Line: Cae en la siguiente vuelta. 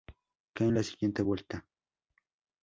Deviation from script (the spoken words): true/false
false